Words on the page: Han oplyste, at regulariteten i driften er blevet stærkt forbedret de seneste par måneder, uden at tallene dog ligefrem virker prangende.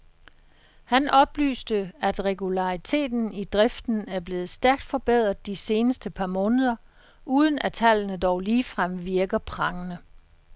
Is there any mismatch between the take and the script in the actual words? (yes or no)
no